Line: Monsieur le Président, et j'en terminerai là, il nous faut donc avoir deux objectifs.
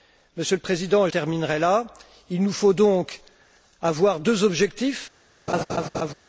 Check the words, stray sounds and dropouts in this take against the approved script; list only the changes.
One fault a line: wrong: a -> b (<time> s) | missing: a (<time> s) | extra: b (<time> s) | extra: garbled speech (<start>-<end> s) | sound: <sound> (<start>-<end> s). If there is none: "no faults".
missing: j'en (1.1 s)
sound: laugh (5.5-6.1 s)